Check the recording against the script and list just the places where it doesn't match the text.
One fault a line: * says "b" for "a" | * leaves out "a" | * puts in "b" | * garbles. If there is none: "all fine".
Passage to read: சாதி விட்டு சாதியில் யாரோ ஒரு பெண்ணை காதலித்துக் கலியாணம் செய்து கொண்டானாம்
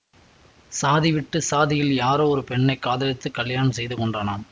all fine